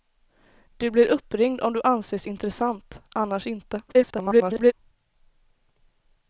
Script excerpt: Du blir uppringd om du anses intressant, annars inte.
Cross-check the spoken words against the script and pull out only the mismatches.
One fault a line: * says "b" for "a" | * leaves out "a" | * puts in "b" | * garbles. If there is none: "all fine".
* garbles